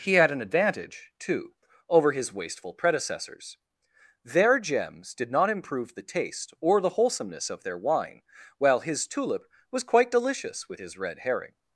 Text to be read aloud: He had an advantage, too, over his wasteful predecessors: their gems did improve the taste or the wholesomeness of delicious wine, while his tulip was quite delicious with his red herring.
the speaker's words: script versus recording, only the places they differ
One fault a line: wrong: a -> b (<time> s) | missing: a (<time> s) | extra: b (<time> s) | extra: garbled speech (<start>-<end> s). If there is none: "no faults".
extra: not (5.3 s)
wrong: delicious -> their (7.6 s)